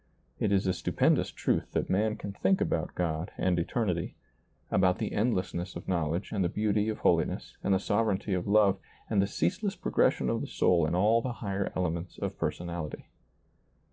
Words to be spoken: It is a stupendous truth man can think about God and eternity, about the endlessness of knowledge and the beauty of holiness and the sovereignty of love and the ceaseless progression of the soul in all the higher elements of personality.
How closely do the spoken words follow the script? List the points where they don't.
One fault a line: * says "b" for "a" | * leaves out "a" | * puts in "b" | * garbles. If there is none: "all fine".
* puts in "that"